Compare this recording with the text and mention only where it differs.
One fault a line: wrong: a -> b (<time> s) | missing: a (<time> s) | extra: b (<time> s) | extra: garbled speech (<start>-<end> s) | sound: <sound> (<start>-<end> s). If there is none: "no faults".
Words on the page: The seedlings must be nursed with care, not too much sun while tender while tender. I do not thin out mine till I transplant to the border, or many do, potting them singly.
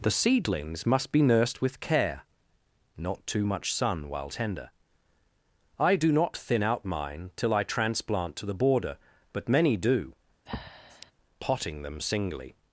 missing: while tender (4.7 s)
wrong: or -> but (9.3 s)
sound: breath (10.5-11.1 s)